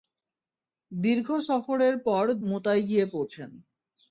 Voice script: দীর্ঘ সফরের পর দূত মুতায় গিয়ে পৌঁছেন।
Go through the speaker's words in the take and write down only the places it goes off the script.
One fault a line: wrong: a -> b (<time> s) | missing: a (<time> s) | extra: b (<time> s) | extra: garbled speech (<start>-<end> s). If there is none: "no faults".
missing: দূত (2.2 s)